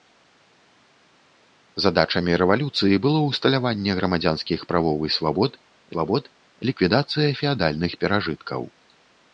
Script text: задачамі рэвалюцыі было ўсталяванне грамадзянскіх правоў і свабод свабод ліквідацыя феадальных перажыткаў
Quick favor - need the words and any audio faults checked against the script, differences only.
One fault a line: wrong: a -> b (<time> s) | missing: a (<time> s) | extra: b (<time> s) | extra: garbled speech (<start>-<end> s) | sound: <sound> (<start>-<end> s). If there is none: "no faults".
no faults